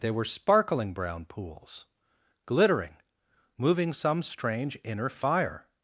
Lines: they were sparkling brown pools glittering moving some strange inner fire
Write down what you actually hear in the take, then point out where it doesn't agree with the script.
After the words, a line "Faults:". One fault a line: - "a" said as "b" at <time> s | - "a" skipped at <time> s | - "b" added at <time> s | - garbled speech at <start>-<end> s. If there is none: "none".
they were sparkling brown pools glittering moving some strange inner fire
Faults:
none